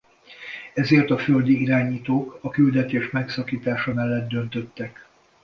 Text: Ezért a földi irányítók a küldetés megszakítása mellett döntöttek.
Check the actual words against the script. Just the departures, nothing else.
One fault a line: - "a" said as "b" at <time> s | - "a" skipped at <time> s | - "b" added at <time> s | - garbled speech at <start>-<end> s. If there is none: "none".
none